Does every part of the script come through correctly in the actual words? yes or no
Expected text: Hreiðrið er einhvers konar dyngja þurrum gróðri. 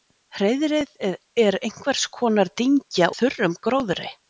yes